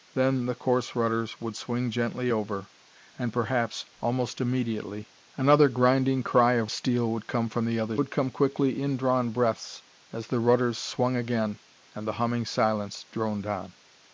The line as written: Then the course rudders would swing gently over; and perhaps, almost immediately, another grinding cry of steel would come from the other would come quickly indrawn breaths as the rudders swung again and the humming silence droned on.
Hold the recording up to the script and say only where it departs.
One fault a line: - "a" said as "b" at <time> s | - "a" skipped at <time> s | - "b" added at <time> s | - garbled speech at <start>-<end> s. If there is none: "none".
none